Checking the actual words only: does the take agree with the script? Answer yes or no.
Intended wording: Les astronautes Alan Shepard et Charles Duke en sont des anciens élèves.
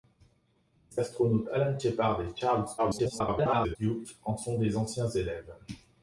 no